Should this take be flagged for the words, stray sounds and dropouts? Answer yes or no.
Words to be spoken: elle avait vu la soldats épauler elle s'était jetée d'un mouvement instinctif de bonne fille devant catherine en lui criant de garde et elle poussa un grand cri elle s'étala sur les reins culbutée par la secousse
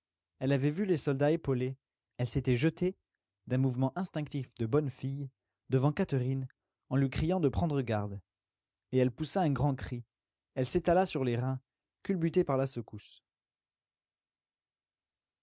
yes